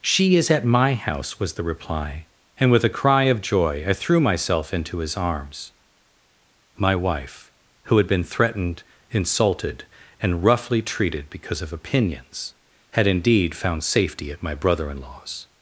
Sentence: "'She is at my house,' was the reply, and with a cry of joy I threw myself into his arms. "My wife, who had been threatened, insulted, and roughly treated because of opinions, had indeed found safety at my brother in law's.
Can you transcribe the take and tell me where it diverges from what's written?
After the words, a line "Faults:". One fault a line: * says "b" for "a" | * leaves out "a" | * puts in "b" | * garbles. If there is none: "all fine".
"'She is at my house,' was the reply, and with a cry of joy I threw myself into his arms. "My wife, who had been threatened, insulted, and roughly treated because of opinions, had indeed found safety at my brother in law's.
Faults:
all fine